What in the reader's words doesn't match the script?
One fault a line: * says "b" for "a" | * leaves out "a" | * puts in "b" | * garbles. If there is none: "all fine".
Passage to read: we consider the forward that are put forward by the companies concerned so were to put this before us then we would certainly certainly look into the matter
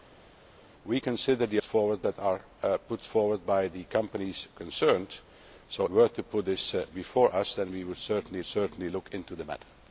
all fine